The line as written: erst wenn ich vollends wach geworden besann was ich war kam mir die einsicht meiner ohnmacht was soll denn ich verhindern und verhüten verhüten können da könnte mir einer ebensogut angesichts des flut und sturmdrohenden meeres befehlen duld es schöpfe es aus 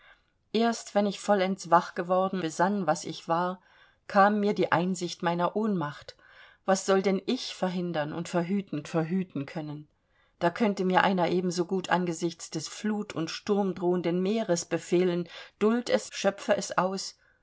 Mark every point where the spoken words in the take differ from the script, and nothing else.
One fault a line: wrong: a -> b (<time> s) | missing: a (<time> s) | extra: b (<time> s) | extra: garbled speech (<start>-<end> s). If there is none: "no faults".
no faults